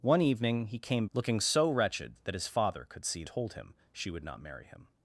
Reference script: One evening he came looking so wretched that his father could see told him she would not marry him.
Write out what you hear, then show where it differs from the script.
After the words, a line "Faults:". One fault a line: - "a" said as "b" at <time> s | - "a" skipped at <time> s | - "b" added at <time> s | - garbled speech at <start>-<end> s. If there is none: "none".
One evening he came looking so wretched that his father could see told him she would not marry him.
Faults:
none